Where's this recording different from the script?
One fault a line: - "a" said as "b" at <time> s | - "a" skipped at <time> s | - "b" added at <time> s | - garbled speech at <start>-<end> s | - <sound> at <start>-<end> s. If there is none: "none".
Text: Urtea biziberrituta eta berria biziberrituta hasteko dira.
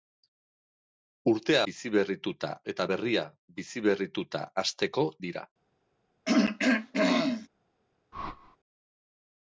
- throat clearing at 6.2-7.5 s
- whoosh at 8.1-8.6 s